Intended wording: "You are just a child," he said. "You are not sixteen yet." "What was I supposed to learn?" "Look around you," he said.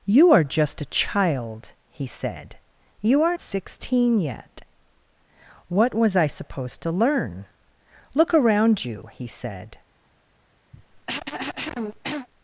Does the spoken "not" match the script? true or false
false